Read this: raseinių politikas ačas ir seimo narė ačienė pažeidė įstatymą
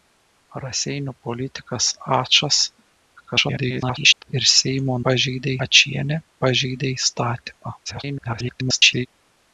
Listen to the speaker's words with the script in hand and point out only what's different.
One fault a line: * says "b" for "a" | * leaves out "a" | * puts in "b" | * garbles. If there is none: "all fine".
* garbles
* says "pažeidė" for "narė"
* garbles